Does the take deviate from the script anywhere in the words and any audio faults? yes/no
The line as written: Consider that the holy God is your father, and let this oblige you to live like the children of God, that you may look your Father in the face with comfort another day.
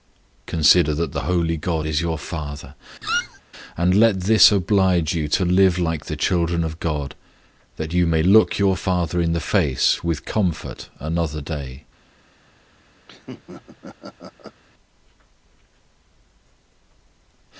yes